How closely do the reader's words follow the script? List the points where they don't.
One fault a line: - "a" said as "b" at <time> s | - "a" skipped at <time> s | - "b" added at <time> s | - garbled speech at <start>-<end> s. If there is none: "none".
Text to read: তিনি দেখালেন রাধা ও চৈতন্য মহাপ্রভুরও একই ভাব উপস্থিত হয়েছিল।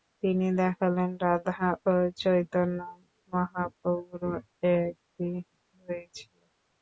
- "ভাব উপস্থিত" skipped at 5.3 s